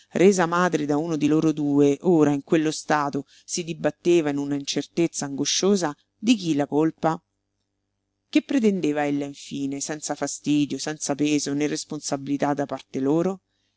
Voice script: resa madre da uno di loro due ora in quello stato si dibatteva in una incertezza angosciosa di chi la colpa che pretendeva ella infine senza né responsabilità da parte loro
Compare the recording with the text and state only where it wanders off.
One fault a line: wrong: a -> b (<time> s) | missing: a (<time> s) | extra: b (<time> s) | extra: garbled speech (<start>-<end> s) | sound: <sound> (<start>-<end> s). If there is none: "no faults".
extra: fastidio senza peso (10.1 s)